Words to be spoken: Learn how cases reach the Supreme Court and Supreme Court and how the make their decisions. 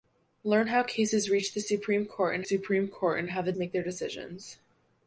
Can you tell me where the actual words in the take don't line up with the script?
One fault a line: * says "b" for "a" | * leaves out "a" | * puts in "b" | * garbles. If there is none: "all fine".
all fine